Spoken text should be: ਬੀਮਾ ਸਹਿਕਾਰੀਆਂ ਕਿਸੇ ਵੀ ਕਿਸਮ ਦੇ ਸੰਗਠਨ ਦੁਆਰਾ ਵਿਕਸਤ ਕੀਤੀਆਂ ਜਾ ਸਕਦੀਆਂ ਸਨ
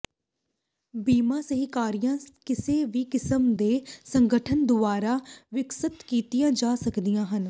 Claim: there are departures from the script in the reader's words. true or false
true